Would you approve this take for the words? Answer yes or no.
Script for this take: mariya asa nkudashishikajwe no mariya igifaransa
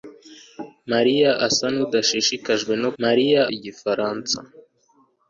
yes